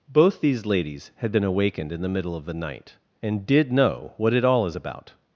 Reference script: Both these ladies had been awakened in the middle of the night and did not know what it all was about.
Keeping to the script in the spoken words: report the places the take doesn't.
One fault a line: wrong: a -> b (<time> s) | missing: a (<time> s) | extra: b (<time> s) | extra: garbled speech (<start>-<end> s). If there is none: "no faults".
missing: not (3.7 s)
wrong: was -> is (4.7 s)